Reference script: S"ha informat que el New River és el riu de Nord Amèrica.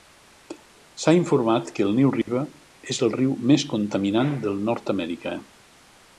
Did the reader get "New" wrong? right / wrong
right